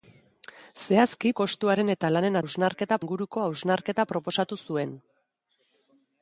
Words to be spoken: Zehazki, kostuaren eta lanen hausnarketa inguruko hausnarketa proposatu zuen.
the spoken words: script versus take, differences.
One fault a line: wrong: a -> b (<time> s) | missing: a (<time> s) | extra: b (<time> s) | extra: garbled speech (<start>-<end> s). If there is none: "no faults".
no faults